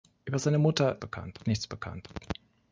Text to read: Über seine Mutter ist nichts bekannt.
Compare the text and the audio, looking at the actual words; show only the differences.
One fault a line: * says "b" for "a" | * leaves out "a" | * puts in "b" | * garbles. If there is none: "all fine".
* says "bekannt" for "ist"